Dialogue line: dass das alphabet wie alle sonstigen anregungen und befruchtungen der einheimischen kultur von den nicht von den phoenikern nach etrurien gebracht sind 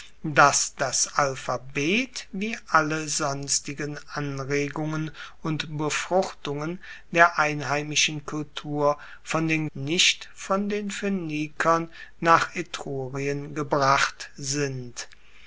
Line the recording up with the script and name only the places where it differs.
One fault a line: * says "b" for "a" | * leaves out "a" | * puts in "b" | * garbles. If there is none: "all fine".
all fine